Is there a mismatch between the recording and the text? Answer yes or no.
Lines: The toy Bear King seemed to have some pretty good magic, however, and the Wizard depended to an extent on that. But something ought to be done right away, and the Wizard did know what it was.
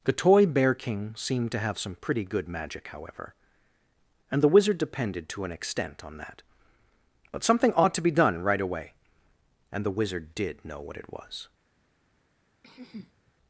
no